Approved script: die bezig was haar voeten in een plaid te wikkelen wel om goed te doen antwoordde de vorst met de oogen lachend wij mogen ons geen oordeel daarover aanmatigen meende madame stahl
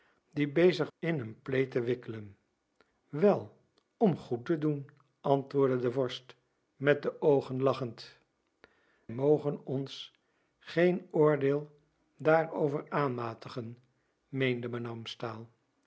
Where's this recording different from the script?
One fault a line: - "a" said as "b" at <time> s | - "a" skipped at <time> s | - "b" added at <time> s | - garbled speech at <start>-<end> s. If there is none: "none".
- "was haar voeten" skipped at 0.9 s
- "wij" skipped at 8.2 s